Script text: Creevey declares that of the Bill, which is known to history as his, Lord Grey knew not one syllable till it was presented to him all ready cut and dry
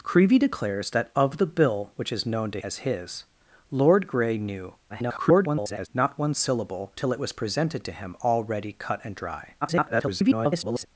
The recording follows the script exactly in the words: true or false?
false